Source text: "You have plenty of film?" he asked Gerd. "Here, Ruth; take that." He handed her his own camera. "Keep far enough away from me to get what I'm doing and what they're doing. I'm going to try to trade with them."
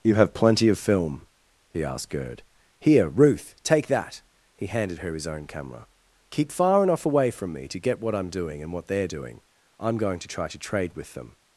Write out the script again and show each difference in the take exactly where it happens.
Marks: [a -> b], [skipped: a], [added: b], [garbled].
"You have plenty of film?" he asked Gerd. "Here, Ruth; take that." He handed her his own camera. "Keep far enough away from me to get what I'm doing and what they're doing. I'm going to try to trade with them."